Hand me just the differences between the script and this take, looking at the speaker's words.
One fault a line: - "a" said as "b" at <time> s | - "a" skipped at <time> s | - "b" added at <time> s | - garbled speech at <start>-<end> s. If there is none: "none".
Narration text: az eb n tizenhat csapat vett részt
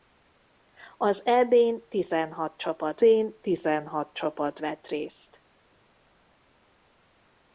- "n tizenhat csapat" added at 3.0 s